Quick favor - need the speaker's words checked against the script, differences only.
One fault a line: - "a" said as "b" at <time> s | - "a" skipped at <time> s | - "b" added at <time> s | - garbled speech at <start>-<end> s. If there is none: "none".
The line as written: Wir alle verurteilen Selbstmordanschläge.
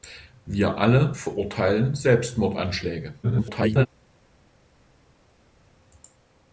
- garbled speech at 3.2-3.9 s